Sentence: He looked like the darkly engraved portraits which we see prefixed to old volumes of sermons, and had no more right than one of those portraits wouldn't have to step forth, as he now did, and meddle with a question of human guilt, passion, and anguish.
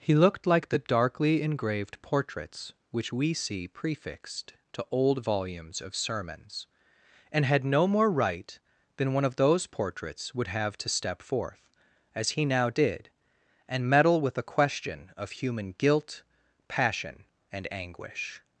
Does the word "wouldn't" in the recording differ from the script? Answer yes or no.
yes